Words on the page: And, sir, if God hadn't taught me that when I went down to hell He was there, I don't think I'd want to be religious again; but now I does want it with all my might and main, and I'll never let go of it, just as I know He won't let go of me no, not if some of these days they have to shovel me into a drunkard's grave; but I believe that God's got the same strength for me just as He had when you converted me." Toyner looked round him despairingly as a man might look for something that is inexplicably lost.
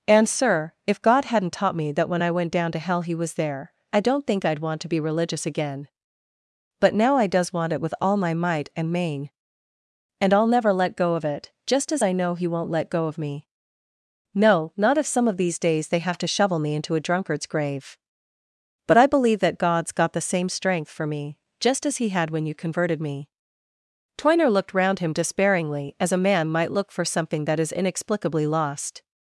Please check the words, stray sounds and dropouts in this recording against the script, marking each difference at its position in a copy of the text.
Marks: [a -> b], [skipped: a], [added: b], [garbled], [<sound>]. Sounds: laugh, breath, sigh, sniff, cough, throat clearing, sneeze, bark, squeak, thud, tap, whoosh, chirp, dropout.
And, sir, if God hadn't taught me that when I went down to hell He was there, I don't think I'd want to be religious again; but now I does want it with all my might and main, and I'll never let go of it, just as I know He won't let go of me no, not if some of these days they have to shovel me into a drunkard's grave; but I believe that God's got the same strength for me just as He had when you converted me." Toyner looked round him despairingly as a man might look for something that is inexplicably lost.